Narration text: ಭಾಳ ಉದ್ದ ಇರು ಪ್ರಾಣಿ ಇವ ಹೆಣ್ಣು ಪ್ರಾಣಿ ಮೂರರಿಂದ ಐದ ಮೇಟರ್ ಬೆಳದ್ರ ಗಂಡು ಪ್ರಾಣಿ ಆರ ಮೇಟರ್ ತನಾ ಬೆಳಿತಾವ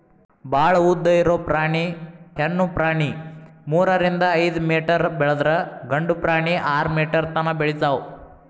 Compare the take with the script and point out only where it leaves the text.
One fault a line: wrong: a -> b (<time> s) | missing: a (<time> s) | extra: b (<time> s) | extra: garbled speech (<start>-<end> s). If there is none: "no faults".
missing: ಇವ (1.8 s)